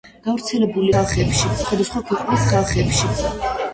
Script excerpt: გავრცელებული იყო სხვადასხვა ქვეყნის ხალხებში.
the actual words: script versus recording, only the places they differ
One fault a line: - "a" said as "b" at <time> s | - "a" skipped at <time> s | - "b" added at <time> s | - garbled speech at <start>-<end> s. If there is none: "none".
- "იყო" said as "ხალხებში" at 0.9 s